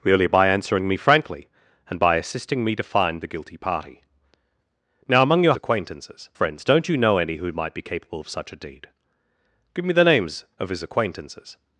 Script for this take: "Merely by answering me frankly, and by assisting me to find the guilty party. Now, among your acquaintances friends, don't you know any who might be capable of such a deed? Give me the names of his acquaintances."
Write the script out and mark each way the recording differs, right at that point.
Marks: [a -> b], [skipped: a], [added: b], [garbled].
"Merely by answering me frankly, and by assisting me to find the guilty party. Now, among your acquaintances friends, don't you know any who might be capable of such a deed? Give me the names of his acquaintances."